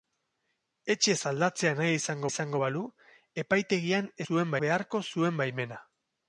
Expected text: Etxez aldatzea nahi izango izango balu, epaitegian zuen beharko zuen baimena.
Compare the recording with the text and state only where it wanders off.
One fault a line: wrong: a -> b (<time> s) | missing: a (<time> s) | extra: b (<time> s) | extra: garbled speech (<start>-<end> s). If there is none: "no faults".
no faults